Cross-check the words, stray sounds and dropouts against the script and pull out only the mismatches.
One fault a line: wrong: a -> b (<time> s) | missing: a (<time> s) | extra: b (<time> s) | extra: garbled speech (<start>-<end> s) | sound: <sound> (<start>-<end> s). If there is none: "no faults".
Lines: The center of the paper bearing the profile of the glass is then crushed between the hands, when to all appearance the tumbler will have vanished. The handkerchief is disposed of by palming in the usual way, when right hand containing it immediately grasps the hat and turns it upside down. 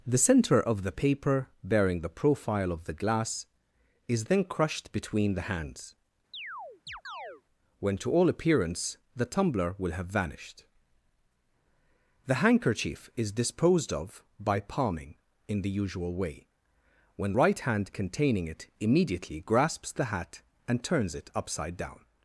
sound: chirp (6.3-7.4 s)